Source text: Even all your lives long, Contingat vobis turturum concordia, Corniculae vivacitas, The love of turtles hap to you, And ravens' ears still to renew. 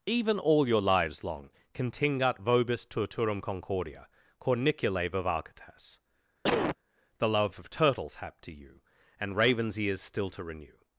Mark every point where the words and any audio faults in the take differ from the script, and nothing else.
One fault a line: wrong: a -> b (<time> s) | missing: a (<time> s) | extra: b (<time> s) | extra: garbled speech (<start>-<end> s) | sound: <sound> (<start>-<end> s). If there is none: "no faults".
sound: cough (6.4-6.8 s)